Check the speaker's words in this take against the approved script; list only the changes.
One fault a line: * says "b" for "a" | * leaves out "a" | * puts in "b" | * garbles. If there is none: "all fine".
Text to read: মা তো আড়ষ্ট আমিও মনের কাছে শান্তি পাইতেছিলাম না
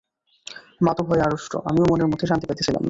* puts in "ভয়ে"
* says "মধ্যে" for "কাছে"